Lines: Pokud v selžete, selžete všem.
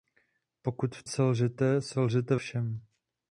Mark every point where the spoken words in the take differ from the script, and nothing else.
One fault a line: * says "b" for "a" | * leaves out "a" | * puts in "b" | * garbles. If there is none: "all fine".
all fine